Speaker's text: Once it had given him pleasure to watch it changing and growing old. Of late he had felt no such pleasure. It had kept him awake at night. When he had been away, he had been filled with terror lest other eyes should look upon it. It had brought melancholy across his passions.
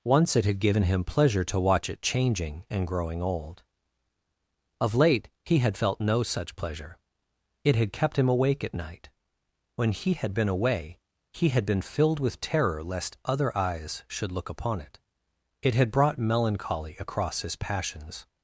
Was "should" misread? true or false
false